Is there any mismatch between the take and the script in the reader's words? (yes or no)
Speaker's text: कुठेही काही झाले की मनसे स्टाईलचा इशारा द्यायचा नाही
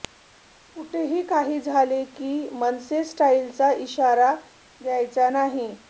no